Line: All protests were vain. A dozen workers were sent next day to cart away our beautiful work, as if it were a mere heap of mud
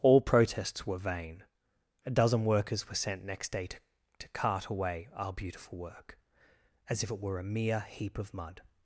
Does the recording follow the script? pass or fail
fail